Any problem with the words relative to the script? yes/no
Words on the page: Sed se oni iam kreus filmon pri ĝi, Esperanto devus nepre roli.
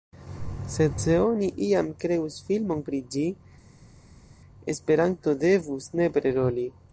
no